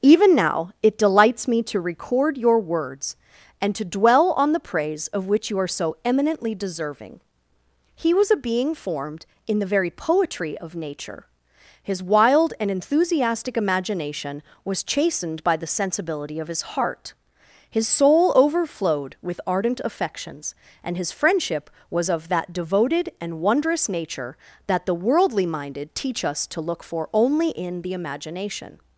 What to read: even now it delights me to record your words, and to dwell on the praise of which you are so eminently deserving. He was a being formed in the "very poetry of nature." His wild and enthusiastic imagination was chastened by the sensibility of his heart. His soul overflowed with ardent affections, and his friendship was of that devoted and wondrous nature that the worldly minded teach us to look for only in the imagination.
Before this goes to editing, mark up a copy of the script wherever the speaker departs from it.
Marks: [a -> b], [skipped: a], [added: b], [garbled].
even now it delights me to record your words, and to dwell on the praise of which you are so eminently deserving. He was a being formed in the "very poetry of nature." His wild and enthusiastic imagination was chastened by the sensibility of his heart. His soul overflowed with ardent affections, and his friendship was of that devoted and wondrous nature that the worldly minded teach us to look for only in the imagination.